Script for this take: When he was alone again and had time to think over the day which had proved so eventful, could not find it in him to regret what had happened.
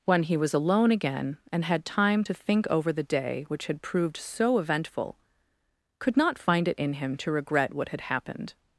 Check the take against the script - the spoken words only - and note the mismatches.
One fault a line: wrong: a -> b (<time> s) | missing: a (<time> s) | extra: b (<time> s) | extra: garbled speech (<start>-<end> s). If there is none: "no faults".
no faults